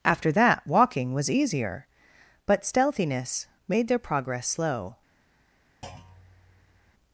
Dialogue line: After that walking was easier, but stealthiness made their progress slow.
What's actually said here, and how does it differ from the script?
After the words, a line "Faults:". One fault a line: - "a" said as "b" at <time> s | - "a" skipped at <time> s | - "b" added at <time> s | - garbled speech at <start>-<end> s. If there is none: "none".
After that walking was easier, but stealthiness made their progress slow.
Faults:
none